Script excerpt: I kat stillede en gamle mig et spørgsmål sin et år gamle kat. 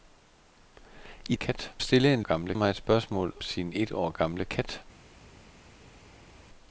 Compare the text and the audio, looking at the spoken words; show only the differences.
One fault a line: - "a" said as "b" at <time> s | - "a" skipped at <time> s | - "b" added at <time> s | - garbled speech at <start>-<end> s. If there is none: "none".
none